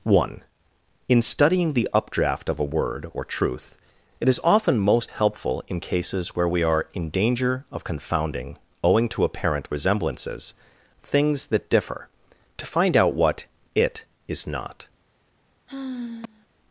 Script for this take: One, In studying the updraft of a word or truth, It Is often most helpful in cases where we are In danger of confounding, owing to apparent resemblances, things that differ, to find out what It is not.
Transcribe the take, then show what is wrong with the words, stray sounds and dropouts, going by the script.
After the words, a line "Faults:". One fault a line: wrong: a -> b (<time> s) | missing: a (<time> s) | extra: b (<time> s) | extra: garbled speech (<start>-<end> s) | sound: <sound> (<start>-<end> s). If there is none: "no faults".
One, In studying the updraft of a word or truth, It Is often most helpful in cases where we are In danger of confounding, owing to apparent resemblances, things that differ, to find out what It is not.
Faults:
sound: sigh (15.7-16.5 s)